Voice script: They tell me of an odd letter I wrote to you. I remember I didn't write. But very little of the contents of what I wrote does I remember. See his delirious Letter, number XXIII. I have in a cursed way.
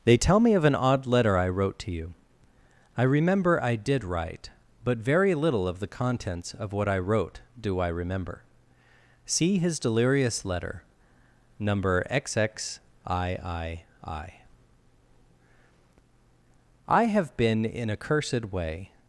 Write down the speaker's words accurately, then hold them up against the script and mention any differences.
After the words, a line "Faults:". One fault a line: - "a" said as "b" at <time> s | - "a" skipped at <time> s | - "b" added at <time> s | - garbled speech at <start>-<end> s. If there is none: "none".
They tell me of an odd letter I wrote to you. I remember I did write. But very little of the contents of what I wrote do I remember. See his delirious Letter, number XXIII. I have been in a cursed way.
Faults:
- "didn't" said as "did" at 3.8 s
- "does" said as "do" at 7.6 s
- "been" added at 17.4 s